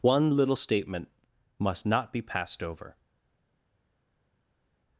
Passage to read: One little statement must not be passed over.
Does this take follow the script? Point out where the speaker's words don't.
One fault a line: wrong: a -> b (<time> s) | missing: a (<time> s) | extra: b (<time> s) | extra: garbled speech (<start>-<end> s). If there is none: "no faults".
no faults